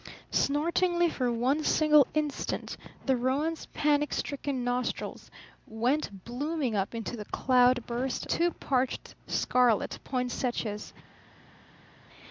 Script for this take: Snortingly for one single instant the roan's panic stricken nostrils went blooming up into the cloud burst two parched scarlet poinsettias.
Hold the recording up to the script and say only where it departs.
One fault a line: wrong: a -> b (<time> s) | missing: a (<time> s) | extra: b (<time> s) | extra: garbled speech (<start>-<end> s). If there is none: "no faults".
no faults